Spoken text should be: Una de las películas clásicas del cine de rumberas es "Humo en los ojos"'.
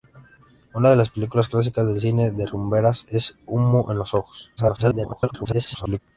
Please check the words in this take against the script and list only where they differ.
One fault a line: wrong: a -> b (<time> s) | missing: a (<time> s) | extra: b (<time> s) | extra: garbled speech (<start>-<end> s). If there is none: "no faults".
extra: garbled speech (4.6-6.0 s)